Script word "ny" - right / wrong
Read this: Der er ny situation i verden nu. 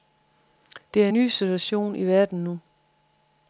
right